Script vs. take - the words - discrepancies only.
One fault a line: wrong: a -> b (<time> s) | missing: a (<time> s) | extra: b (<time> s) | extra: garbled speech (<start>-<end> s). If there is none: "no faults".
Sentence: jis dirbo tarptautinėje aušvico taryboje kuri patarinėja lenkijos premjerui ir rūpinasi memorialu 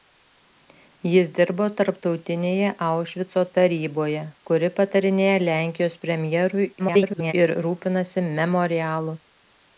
extra: garbled speech (6.8-7.3 s)